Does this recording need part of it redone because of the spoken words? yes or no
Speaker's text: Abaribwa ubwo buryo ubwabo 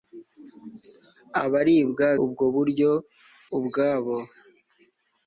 no